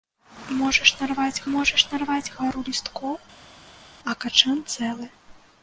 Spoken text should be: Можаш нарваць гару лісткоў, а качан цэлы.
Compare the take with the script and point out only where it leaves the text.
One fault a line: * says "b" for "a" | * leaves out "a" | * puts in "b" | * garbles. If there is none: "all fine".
* puts in "можаш нарваць"